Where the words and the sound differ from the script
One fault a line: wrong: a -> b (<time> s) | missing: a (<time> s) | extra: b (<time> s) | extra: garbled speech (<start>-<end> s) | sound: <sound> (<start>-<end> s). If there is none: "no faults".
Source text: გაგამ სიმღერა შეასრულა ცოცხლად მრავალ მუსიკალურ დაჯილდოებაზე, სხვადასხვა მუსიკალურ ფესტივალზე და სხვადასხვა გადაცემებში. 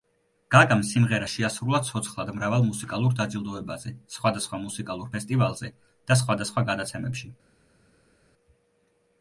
no faults